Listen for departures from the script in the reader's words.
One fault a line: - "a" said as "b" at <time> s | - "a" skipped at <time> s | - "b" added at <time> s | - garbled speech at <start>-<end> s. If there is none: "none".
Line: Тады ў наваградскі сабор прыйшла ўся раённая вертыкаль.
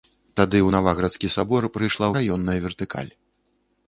- "ўся" skipped at 2.1 s